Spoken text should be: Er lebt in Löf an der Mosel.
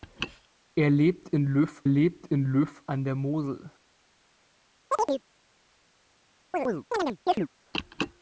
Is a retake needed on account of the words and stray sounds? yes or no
yes